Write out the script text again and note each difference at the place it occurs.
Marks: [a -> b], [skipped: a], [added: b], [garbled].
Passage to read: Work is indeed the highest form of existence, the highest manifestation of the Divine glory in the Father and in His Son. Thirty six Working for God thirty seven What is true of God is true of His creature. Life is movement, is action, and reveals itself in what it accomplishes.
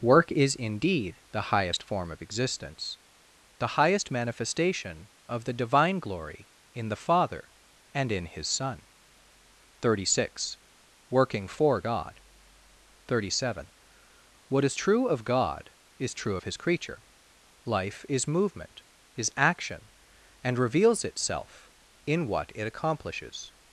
Work is indeed the highest form of existence, the highest manifestation of the Divine glory in the Father and in His Son. Thirty six Working for God thirty seven What is true of God is true of His creature. Life is movement, is action, and reveals itself in what it accomplishes.